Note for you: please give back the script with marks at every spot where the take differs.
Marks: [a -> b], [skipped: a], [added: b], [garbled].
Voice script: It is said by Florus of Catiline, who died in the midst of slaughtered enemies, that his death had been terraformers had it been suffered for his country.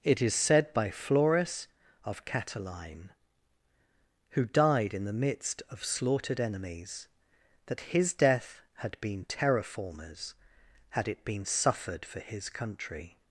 It is said by Florus of Catiline, who died in the midst of slaughtered enemies, that his death had been terraformers had it been suffered for his country.